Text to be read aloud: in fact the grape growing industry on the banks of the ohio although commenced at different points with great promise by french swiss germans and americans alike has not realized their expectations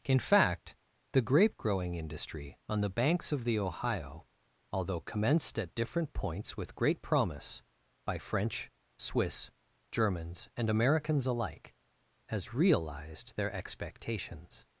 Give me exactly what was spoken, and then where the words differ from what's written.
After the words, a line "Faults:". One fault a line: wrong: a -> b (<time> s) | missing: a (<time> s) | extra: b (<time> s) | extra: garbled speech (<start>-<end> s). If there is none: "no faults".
in fact the grape growing industry on the banks of the ohio although commenced at different points with great promise by french swiss germans and americans alike has realized their expectations
Faults:
missing: not (12.5 s)